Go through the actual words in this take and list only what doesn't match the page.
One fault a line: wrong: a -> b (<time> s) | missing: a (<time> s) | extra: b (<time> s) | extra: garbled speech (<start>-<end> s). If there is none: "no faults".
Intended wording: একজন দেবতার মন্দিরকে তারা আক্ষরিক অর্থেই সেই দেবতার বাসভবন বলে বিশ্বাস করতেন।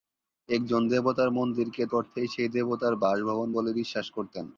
missing: তারা আক্ষরিক (1.8 s)